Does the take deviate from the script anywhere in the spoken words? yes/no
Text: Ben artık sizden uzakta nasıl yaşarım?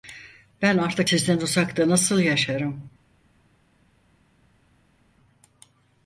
no